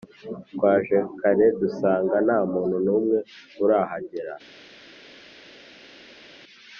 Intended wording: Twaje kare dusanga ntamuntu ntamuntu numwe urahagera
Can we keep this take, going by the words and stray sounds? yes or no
no